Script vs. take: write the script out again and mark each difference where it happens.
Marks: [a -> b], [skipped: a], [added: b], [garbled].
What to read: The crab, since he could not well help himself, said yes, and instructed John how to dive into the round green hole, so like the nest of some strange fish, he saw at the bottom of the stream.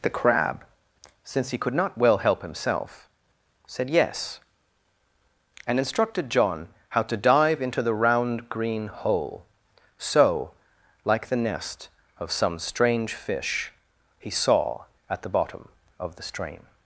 The crab, since he could not well help himself, said yes, and instructed John how to dive into the round green hole, so like the nest of some strange fish, he saw at the bottom of the stream.